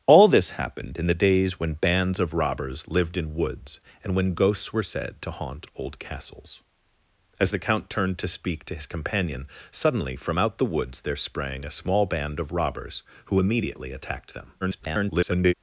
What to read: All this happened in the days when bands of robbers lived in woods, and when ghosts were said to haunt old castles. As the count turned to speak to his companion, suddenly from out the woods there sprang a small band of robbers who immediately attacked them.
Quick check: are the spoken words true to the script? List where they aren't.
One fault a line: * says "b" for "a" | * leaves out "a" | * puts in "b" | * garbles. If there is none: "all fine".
* garbles